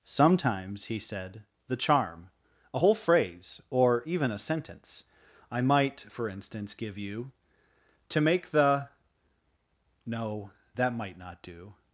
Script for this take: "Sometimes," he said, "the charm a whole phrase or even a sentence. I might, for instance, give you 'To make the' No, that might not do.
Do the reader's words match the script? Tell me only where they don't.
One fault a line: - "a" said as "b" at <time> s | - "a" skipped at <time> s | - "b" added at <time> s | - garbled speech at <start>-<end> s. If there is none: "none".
none